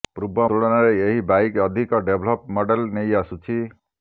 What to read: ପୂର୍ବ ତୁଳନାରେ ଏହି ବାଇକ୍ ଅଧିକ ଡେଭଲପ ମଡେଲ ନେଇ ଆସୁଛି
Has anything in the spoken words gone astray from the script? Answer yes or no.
no